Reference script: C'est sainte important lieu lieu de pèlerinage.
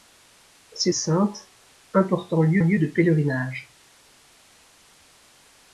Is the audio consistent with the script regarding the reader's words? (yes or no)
yes